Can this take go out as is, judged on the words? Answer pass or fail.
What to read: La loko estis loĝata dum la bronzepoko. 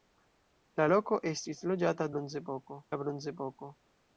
fail